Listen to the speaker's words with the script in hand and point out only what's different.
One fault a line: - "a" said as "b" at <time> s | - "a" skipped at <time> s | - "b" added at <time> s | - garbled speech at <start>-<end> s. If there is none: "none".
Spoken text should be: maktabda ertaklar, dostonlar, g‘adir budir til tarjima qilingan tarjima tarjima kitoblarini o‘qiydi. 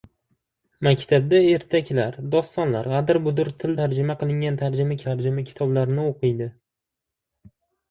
none